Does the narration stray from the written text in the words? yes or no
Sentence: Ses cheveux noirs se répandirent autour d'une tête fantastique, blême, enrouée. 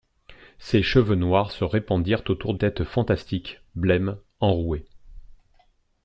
yes